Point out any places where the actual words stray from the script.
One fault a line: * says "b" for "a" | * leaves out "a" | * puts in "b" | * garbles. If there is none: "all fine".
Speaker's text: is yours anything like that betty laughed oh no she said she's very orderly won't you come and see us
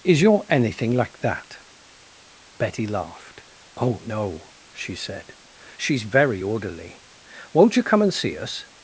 * says "your" for "yours"